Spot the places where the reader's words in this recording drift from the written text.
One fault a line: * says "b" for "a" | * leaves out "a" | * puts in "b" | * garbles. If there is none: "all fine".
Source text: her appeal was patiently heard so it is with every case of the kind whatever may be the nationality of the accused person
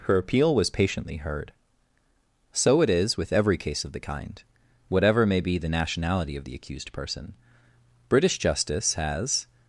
* puts in "british justice has"